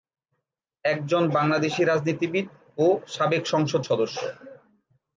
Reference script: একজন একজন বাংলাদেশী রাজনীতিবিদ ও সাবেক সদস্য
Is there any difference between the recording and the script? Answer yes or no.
yes